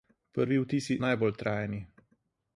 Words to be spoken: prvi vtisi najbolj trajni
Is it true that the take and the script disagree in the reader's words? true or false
false